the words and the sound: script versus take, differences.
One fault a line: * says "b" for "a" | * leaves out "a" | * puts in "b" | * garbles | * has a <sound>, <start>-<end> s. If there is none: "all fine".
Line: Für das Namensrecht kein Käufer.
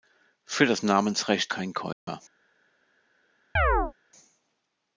* has a dropout, 1.9-2.1 s
* has a chirp, 3.6-3.9 s